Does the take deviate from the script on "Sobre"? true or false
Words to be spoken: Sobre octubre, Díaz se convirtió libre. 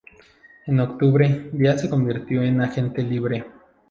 true